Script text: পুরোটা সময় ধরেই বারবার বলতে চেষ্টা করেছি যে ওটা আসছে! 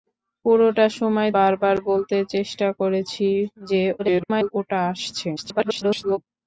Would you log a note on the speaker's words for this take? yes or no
yes